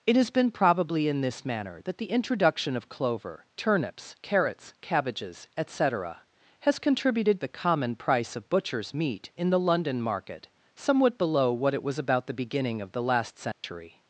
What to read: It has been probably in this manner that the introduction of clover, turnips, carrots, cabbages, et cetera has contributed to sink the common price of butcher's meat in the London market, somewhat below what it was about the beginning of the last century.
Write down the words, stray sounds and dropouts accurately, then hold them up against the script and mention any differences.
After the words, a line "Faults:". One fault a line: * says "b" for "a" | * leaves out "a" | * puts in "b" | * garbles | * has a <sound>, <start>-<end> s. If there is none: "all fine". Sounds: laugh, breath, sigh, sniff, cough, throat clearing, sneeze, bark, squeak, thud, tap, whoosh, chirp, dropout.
It has been probably in this manner that the introduction of clover, turnips, carrots, cabbages, et cetera has contributed the common price of butcher's meat in the London market, somewhat below what it was about the beginning of the last century.
Faults:
* leaves out "to sink"
* has a dropout, 13.5-13.6 s